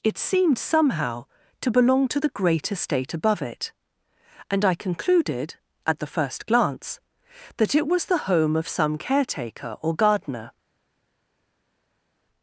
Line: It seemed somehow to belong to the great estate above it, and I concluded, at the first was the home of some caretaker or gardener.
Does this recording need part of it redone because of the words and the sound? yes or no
yes